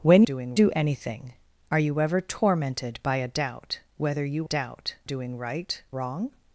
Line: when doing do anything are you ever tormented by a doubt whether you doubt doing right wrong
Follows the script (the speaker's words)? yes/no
yes